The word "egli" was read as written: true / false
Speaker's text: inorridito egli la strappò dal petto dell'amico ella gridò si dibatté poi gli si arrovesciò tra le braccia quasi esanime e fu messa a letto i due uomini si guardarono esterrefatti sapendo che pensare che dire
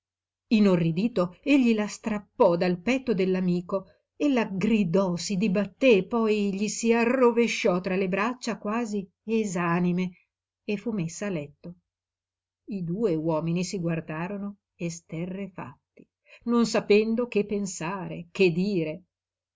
true